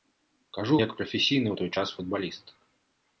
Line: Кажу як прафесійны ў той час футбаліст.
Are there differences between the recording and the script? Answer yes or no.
no